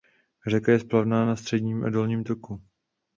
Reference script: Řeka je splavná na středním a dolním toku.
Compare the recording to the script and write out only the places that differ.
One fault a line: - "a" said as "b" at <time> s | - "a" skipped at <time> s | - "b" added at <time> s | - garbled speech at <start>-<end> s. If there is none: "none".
none